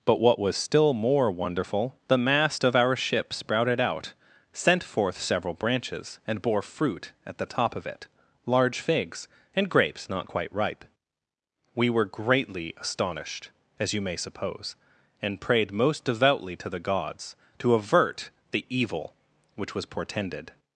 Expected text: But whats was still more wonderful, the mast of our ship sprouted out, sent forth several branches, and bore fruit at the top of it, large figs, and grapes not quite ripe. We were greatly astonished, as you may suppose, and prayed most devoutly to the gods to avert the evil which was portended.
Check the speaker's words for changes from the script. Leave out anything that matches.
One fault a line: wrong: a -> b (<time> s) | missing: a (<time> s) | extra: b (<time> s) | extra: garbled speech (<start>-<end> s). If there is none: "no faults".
wrong: whats -> what (0.2 s)